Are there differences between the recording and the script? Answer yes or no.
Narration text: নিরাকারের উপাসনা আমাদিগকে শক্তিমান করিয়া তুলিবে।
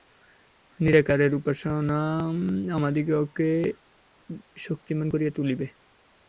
no